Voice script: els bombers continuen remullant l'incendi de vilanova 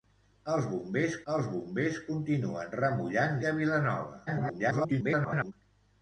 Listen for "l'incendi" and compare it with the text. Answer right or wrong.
wrong